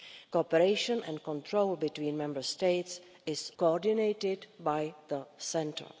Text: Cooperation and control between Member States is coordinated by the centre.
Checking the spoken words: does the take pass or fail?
pass